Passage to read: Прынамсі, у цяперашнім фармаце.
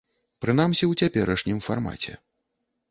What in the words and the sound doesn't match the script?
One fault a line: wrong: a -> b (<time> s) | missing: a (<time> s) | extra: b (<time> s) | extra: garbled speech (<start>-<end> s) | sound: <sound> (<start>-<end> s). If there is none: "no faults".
no faults